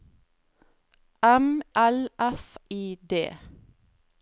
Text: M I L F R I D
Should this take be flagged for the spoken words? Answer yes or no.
yes